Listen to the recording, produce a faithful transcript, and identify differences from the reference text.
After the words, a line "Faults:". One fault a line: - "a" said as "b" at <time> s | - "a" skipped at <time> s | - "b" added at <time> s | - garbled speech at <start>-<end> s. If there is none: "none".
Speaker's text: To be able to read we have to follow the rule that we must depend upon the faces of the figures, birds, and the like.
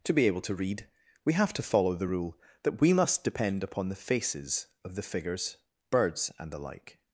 To be able to read we have to follow the rule that we must depend upon the faces of the figures, birds, and the like.
Faults:
none